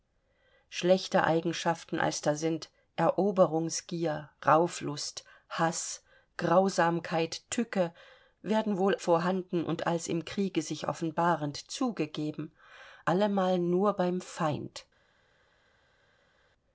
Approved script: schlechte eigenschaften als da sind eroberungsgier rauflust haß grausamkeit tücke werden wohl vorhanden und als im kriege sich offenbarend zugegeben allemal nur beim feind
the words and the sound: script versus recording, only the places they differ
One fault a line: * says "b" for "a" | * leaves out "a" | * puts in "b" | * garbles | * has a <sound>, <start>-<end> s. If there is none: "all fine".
all fine